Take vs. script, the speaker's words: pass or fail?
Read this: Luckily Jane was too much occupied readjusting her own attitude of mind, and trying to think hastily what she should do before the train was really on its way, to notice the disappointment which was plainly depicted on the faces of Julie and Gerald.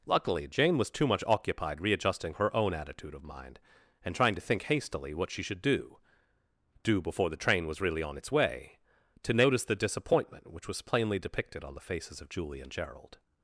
fail